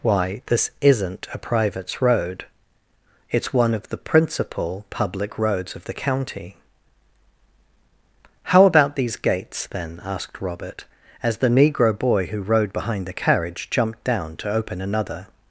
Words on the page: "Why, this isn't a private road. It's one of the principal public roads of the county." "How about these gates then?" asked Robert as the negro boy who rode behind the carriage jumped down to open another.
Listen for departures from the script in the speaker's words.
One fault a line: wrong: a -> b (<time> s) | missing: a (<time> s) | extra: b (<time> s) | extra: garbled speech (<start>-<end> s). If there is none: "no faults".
wrong: private -> privates (1.4 s)